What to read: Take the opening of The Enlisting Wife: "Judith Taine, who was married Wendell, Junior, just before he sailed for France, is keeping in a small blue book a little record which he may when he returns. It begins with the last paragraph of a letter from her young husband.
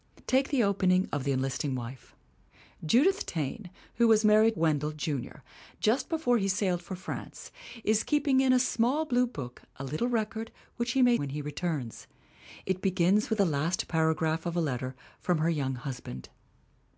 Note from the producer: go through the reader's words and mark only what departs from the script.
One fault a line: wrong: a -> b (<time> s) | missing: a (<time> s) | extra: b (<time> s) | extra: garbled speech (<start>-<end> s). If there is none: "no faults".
no faults